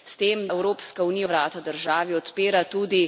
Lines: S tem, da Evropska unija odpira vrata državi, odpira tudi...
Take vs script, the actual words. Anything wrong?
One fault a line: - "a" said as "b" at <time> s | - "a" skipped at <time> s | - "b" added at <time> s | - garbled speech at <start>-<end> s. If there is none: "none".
- "da" skipped at 0.5 s
- "odpira" skipped at 1.3 s